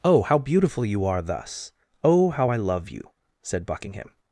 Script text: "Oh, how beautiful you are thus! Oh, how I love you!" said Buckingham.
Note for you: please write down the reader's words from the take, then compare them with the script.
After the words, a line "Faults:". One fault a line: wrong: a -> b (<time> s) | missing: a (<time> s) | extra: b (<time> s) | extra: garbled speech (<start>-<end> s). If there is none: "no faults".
"Oh, how beautiful you are thus! Oh, how I love you!" said Buckingham.
Faults:
no faults